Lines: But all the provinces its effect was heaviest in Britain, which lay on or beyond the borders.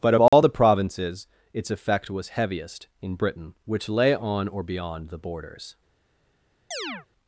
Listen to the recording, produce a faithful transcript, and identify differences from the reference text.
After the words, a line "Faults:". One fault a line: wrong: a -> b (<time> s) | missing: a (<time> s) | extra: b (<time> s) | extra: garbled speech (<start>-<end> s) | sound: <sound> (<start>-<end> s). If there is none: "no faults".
But all the provinces its effect was heaviest in Britain, which lay on or beyond the borders.
Faults:
sound: dropout (0.3-0.3 s)
sound: chirp (6.7-7.1 s)